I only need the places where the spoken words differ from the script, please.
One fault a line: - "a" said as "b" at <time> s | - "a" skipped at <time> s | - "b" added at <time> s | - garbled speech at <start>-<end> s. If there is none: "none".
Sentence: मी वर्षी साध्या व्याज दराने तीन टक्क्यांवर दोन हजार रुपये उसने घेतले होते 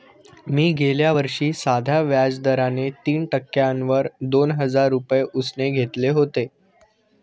- "गेल्या" added at 0.7 s